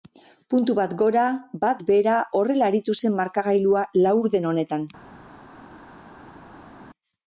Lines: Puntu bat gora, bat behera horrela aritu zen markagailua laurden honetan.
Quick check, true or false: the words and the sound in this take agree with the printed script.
true